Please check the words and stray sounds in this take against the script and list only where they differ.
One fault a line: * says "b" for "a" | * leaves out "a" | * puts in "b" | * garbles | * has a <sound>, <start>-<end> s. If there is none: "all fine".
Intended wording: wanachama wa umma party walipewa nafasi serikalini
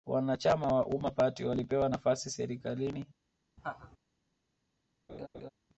* has a laugh, 3.6-4.0 s
* has a laugh, 5.1-5.5 s